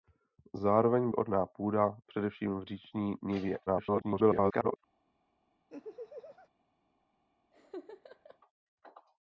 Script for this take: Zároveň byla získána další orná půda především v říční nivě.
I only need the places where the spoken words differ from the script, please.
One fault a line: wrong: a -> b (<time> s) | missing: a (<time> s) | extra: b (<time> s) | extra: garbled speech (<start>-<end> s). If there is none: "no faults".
missing: byla získána další (1.1 s)
extra: garbled speech (3.7-4.8 s)